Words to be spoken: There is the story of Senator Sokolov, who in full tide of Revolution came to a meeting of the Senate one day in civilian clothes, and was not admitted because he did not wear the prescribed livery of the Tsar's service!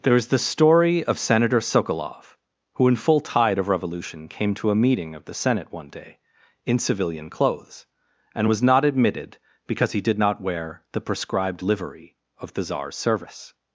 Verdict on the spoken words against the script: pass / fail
pass